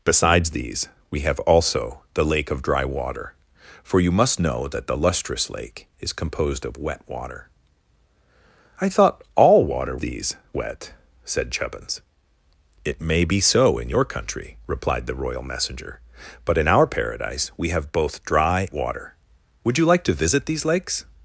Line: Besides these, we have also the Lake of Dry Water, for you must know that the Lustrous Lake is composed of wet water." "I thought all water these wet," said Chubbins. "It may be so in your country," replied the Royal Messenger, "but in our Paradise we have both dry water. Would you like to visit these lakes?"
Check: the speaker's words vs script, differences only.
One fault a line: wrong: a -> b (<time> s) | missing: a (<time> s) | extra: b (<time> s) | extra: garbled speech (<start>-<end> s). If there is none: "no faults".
no faults